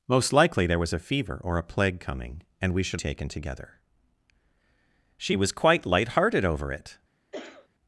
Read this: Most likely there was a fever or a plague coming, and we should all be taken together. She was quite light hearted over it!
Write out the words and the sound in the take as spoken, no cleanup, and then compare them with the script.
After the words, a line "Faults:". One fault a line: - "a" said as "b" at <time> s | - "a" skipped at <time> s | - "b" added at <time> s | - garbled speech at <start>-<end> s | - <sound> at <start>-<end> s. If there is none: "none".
Most likely there was a fever or a plague coming, and we should taken together. She was quite light hearted over it!
Faults:
- "all be" skipped at 3.0 s
- cough at 7.3-7.7 s